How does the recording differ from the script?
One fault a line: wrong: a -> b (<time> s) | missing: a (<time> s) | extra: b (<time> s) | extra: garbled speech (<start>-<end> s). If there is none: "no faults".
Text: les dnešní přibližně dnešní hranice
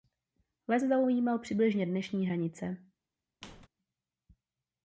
wrong: dnešní -> zaujímal (0.8 s)